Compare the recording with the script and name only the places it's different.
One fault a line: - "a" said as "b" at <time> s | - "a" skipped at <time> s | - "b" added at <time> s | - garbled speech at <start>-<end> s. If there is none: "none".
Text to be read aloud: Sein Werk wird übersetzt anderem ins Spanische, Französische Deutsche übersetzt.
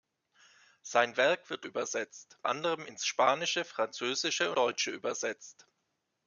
none